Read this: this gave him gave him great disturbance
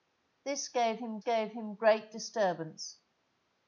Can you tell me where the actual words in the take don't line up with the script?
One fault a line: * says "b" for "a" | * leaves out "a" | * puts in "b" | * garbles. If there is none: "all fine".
all fine